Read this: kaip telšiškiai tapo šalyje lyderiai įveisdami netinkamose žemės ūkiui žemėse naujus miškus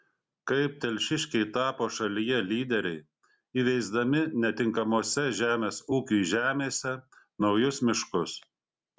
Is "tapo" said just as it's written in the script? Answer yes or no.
yes